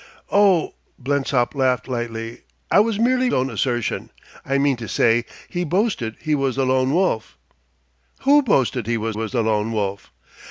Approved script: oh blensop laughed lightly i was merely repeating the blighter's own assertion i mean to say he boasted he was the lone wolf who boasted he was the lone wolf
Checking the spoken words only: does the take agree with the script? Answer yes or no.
no